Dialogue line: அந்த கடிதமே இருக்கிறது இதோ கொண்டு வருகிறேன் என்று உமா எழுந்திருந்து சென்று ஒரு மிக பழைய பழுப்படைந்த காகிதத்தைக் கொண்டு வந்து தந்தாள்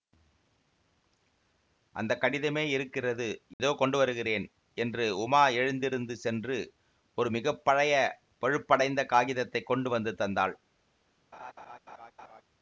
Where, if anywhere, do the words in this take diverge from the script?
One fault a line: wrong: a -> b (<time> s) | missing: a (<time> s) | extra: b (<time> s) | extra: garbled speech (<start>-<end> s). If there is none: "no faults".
no faults